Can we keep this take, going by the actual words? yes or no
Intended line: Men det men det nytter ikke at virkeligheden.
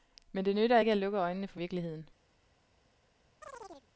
no